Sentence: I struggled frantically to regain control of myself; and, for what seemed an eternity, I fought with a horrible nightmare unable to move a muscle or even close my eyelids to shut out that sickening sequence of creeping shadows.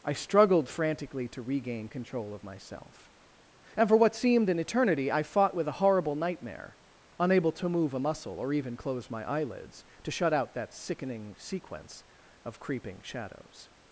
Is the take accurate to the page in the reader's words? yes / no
yes